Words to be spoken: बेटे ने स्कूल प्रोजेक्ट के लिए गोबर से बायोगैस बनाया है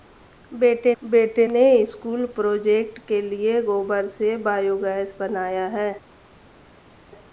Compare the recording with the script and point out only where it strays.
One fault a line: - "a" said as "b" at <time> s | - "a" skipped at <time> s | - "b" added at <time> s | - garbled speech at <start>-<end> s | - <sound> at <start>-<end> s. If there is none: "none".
- "बेटे" added at 1.0 s